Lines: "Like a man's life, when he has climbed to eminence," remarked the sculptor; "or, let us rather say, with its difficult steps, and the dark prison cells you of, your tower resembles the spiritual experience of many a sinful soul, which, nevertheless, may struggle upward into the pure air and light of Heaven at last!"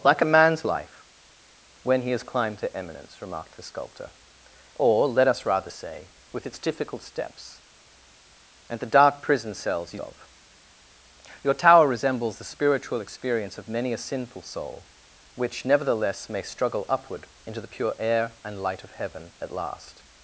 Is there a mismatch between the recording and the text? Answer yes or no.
no